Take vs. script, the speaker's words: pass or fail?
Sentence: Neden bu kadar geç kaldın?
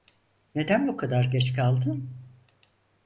pass